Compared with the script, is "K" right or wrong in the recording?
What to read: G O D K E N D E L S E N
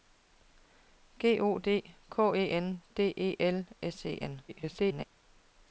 right